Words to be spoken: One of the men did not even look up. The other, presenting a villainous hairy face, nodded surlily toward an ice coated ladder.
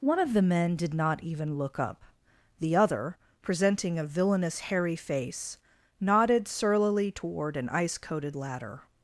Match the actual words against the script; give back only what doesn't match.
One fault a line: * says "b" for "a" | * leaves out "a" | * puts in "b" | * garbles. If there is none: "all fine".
all fine